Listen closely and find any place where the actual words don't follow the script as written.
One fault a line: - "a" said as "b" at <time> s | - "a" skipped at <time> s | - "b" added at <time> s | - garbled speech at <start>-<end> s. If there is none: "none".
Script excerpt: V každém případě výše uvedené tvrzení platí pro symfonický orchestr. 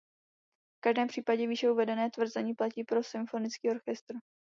none